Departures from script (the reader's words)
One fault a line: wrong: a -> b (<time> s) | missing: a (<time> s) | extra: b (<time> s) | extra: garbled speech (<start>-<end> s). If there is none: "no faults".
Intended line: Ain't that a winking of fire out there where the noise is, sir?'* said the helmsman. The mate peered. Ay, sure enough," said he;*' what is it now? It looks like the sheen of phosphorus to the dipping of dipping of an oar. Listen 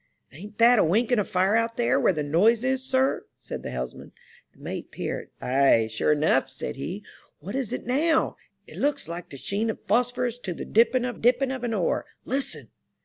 no faults